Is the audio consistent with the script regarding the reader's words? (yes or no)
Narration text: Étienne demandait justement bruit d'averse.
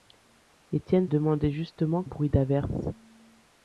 yes